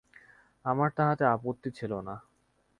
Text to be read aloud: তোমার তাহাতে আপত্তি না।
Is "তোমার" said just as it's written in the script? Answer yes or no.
no